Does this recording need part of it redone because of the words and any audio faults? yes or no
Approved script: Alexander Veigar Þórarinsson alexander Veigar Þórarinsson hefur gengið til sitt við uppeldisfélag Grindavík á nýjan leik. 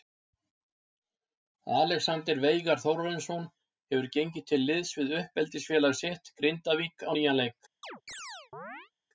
yes